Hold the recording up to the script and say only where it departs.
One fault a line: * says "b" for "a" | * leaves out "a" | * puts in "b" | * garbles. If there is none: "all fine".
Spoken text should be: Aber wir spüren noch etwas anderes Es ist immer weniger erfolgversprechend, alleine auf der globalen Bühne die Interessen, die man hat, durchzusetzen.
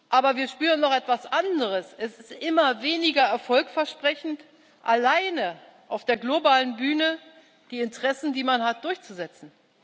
all fine